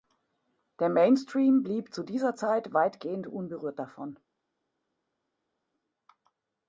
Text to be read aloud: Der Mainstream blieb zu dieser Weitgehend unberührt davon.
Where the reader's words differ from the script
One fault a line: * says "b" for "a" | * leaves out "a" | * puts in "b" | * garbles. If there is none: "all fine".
* puts in "Zeit"